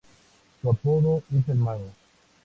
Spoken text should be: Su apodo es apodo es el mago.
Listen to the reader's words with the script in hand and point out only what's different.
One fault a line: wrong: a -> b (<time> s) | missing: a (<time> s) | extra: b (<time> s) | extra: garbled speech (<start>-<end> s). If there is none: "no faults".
missing: apodo es (1.5 s)